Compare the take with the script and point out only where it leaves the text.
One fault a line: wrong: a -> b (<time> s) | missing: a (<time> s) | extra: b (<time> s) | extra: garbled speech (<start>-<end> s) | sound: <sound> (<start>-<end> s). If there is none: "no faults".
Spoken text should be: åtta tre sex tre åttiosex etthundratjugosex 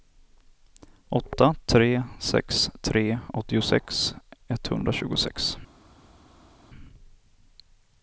no faults